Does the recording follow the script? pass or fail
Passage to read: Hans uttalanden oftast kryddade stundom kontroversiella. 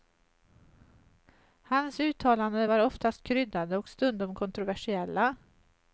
fail